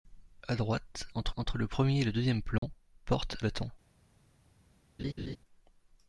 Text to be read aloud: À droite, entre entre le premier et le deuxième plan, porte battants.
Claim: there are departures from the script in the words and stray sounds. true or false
true